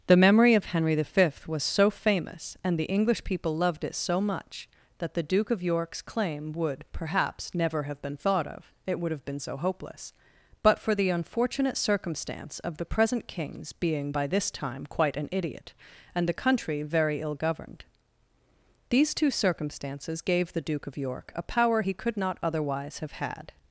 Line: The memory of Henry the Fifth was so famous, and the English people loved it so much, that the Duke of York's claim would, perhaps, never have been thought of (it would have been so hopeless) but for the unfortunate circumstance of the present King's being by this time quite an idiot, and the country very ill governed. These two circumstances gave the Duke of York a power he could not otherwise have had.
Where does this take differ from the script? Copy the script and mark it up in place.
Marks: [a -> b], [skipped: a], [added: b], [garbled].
The memory of Henry the Fifth was so famous, and the English people loved it so much, that the Duke of York's claim would, perhaps, never have been thought of (it would have been so hopeless) but for the unfortunate circumstance of the present King's being by this time quite an idiot, and the country very ill governed. These two circumstances gave the Duke of York a power he could not otherwise have had.